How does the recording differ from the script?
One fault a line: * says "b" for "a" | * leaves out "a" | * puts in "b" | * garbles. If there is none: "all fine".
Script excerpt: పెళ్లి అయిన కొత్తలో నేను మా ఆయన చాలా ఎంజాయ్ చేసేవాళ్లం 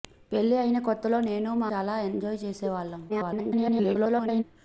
* leaves out "ఆయన"
* garbles